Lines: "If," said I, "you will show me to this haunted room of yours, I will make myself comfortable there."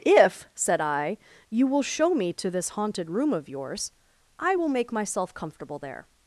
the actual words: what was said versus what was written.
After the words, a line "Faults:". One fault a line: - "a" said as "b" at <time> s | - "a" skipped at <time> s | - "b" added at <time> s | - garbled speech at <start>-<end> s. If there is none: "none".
"If," said I, "you will show me to this haunted room of yours, I will make myself comfortable there."
Faults:
none